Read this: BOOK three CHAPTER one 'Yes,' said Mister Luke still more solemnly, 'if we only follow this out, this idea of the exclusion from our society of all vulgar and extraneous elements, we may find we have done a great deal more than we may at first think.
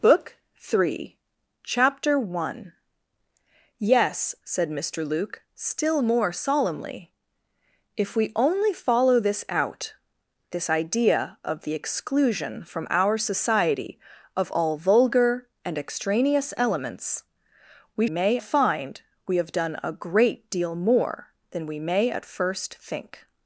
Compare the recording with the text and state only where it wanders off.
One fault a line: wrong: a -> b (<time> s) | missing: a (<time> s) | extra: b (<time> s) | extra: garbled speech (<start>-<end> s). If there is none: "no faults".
no faults